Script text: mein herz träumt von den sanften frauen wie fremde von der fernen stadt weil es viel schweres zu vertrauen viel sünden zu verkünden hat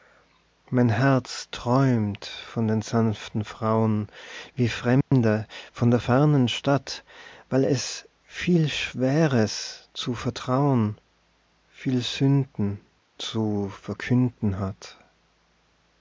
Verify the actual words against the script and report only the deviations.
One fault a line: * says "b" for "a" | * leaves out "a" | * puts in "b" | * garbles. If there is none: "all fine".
all fine